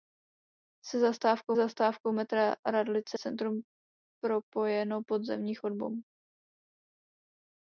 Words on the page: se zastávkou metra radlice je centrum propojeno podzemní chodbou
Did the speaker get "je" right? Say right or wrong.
wrong